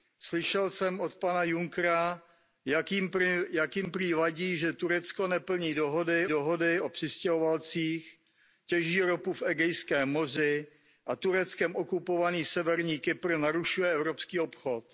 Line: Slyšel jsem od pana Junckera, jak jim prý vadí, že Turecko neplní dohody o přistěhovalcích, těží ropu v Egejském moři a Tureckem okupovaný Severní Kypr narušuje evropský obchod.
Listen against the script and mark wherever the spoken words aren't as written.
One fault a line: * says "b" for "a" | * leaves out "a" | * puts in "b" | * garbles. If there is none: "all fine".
* puts in "dohody"